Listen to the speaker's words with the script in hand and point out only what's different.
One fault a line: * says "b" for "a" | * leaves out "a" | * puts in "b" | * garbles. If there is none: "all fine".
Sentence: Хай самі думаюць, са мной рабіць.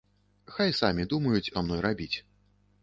all fine